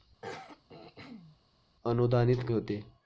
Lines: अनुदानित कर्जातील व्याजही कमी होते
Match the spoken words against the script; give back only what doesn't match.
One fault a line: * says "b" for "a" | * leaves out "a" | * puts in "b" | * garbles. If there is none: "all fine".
* leaves out "कर्जातील व्याजही कमी"